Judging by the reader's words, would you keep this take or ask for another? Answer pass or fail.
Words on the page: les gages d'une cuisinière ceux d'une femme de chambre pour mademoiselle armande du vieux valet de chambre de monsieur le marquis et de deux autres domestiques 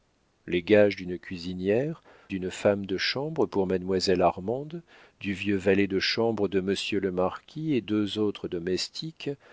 fail